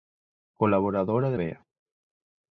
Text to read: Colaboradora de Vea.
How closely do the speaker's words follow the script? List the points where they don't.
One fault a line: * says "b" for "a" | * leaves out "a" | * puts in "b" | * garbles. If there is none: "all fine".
all fine